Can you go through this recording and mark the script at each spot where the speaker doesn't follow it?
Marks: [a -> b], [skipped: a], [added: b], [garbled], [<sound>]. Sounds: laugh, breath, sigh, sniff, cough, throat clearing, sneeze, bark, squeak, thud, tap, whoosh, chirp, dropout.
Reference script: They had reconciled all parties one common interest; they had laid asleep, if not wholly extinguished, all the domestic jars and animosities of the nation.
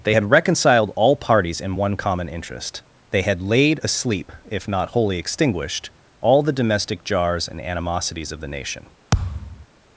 They had reconciled all parties [added: in] one common interest; they had laid asleep, if not wholly extinguished, all the domestic jars and animosities of the nation. [thud]